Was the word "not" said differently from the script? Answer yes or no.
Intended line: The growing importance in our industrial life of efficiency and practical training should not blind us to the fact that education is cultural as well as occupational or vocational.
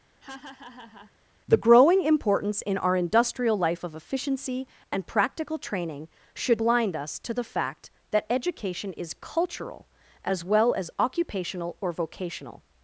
yes